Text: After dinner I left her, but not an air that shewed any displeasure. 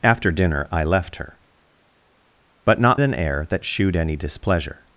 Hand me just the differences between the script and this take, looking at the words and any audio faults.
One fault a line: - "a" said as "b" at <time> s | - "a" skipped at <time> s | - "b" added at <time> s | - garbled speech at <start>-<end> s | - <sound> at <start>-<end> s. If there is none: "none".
none